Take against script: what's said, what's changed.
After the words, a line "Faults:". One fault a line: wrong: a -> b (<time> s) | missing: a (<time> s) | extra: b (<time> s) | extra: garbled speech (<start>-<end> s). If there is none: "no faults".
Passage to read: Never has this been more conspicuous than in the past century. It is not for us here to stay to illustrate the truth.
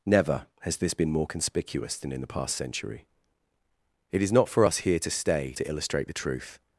Never has this been more conspicuous than in the past century. It is not for us here to stay to illustrate the truth.
Faults:
no faults